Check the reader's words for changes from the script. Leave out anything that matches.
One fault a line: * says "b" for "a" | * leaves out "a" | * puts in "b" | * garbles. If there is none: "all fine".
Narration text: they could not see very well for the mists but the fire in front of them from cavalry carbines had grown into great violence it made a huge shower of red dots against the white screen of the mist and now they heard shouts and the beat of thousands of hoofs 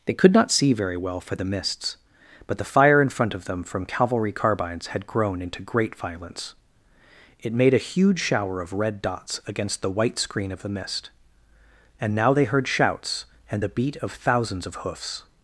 all fine